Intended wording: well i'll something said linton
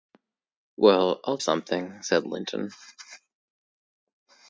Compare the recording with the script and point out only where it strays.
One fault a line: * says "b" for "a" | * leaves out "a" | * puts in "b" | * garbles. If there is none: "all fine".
all fine